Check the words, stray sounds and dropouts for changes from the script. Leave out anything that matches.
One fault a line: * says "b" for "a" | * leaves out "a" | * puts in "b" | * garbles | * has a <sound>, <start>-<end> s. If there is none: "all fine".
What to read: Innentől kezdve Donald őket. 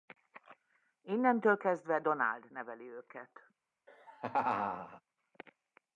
* puts in "neveli"
* has a laugh, 3.9-5.0 s